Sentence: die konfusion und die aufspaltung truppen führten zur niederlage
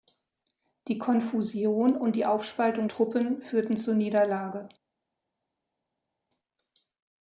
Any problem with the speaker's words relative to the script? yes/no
no